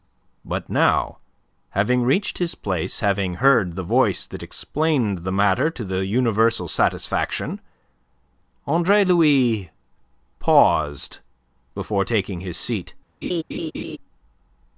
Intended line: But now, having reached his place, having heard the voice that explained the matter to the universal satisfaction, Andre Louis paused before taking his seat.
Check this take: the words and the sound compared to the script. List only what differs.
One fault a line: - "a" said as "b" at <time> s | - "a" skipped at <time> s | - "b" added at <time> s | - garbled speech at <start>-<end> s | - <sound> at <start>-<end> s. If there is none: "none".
- laugh at 13.2-14.0 s